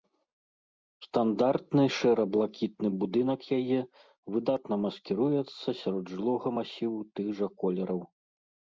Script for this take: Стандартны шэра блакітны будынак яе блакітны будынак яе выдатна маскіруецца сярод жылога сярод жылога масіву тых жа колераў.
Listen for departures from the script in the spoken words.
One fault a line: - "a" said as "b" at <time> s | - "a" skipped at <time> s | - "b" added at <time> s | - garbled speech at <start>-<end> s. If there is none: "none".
- "блакітны будынак яе" skipped at 3.8 s
- "сярод жылога" skipped at 6.5 s